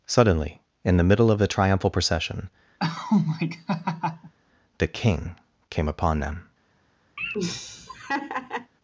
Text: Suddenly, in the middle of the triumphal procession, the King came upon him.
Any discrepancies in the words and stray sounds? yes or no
yes